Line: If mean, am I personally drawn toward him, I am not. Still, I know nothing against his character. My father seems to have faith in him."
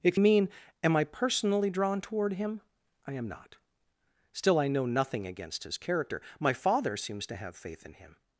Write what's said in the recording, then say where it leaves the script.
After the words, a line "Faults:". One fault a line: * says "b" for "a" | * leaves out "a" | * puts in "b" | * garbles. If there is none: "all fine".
If mean, am I personally drawn toward him, I am not. Still, I know nothing against his character. My father seems to have faith in him."
Faults:
all fine